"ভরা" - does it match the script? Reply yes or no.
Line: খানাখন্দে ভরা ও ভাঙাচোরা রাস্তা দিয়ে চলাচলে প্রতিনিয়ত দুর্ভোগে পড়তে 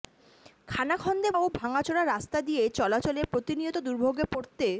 no